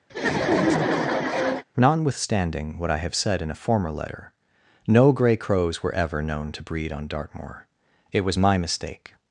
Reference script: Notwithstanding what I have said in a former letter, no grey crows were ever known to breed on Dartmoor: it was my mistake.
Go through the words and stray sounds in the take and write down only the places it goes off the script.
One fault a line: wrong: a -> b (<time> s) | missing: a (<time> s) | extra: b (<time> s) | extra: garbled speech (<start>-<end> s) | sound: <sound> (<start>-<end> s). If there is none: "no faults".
sound: laugh (0.1-1.6 s)